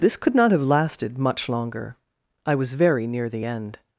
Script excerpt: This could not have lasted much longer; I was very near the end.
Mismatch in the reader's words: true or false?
false